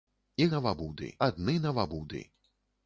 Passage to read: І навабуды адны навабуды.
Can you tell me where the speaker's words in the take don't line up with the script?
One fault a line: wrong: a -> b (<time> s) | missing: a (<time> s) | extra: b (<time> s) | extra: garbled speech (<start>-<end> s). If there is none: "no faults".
no faults